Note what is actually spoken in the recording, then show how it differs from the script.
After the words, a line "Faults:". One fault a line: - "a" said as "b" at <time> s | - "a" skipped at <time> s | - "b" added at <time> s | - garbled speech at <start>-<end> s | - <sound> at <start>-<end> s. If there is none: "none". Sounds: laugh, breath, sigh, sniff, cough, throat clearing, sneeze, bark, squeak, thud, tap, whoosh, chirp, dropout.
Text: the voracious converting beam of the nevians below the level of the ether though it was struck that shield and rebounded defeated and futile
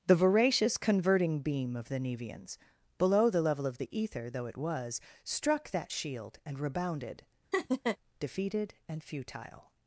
the voracious converting beam of the nevians below the level of the ether though it was struck that shield and rebounded defeated and futile
Faults:
- laugh at 7.5-8.0 s